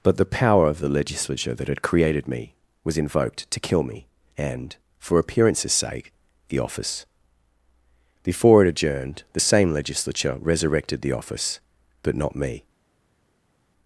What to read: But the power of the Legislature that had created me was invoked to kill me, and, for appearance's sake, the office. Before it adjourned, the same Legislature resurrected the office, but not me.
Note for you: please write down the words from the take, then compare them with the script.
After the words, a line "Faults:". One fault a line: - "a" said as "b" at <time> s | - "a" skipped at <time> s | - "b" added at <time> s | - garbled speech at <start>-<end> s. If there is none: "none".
But the power of the Legislature that had created me was invoked to kill me, and, for appearance's sake, the office. Before it adjourned, the same Legislature resurrected the office, but not me.
Faults:
none